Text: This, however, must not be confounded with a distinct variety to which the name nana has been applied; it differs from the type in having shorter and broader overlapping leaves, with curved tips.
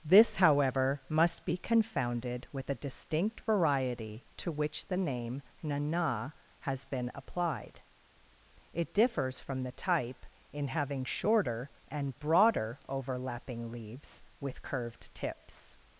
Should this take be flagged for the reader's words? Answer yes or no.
yes